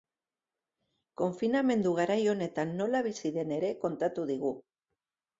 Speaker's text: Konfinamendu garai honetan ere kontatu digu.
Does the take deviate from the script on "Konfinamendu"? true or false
false